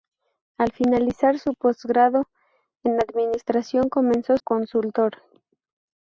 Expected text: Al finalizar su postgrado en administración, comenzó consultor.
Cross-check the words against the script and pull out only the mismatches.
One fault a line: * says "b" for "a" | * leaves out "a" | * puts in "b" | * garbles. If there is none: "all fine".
all fine